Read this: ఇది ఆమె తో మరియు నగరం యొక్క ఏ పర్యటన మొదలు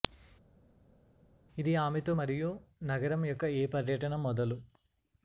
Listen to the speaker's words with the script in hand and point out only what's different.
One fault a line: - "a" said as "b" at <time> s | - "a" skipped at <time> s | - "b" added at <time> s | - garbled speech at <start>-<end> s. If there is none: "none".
none